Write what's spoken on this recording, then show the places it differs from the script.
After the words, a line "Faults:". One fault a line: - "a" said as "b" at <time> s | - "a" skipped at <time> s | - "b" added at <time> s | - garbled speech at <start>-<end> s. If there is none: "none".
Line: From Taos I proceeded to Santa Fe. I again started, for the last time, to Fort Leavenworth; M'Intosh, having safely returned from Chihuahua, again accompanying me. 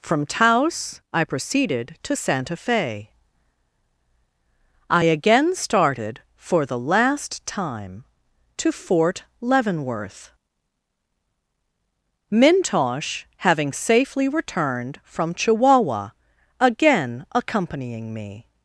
From Taos I proceeded to Santa Fe. I again started, for the last time, to Fort Leavenworth; M'Intosh, having safely returned from Chihuahua, again accompanying me.
Faults:
none